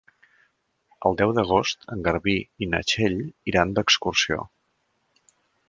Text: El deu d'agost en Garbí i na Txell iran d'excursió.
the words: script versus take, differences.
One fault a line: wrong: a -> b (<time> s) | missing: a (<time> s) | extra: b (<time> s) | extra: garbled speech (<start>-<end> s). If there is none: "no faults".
no faults